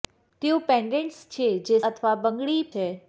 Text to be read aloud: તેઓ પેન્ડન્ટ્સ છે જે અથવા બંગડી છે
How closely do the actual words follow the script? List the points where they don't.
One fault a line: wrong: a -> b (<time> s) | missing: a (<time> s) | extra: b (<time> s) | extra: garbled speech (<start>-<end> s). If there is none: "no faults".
no faults